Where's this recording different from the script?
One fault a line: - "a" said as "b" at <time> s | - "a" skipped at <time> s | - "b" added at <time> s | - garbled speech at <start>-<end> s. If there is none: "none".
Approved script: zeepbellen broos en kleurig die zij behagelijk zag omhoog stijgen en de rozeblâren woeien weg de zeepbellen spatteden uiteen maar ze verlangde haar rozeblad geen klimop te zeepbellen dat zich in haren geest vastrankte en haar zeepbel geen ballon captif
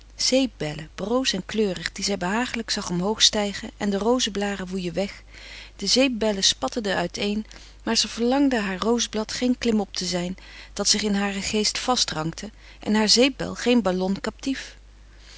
- "zeepbellen" said as "zijn" at 10.0 s